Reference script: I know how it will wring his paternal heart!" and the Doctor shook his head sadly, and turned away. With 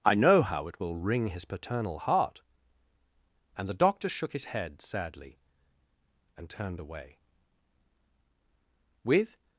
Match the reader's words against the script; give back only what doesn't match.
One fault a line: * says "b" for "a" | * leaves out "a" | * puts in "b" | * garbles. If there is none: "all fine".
all fine